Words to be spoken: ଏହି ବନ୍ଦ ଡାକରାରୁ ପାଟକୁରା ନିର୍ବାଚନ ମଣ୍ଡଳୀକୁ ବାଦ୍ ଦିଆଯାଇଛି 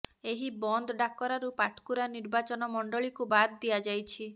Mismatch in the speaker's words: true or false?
false